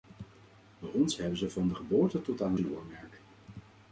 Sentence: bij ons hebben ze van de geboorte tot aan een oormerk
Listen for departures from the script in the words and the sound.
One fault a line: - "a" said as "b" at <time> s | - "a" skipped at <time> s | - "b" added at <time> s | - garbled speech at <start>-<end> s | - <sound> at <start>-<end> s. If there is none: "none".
none